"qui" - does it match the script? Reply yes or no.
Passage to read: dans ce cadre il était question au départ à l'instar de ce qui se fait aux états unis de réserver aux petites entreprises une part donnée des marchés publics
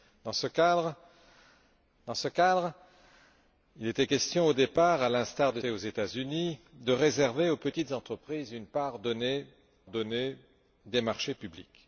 no